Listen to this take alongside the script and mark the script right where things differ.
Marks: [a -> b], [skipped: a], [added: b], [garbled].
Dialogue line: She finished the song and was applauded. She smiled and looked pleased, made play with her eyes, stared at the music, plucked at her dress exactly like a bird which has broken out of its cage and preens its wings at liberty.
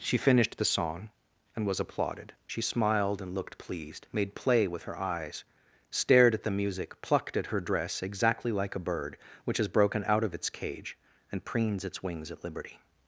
She finished the song and was applauded. She smiled and looked pleased, made play with her eyes, stared at the music, plucked at her dress exactly like a bird which has broken out of its cage and preens its wings at liberty.